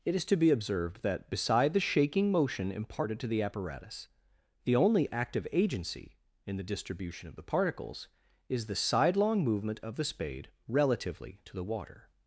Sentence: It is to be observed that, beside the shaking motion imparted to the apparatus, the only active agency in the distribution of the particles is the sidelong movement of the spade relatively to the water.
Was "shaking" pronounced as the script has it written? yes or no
yes